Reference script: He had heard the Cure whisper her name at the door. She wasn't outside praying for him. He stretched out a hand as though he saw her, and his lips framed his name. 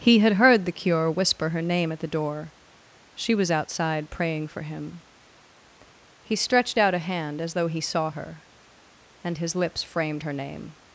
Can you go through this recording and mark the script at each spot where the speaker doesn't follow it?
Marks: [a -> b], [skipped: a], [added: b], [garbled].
He had heard the Cure whisper her name at the door. She [wasn't -> was] outside praying for him. He stretched out a hand as though he saw her, and his lips framed [his -> her] name.